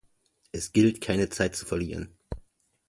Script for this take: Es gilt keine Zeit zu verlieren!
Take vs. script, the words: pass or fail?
pass